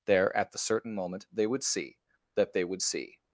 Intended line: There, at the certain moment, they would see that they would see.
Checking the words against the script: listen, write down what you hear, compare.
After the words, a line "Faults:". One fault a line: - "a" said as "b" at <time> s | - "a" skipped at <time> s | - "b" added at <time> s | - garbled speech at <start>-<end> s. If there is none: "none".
There, at the certain moment, they would see that they would see.
Faults:
none